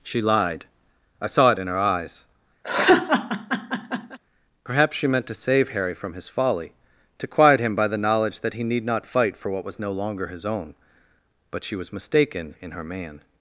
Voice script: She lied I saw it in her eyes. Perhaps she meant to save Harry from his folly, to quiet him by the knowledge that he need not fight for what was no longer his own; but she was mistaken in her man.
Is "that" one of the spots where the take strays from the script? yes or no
no